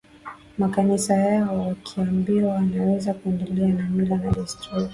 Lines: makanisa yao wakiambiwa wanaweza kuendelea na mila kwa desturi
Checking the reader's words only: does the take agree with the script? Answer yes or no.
no